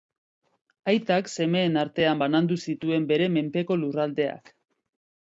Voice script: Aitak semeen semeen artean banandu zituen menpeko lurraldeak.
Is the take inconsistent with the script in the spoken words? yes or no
yes